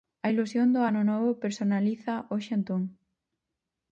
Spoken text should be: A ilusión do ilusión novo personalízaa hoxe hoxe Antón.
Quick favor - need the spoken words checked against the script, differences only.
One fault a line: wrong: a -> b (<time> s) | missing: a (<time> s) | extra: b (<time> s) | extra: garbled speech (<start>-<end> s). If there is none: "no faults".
wrong: ilusión -> ano (0.9 s)
missing: hoxe (2.5 s)